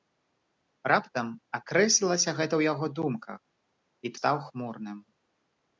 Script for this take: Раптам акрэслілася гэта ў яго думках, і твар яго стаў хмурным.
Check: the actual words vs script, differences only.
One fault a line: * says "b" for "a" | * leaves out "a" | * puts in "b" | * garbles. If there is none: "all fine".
* leaves out "твар яго"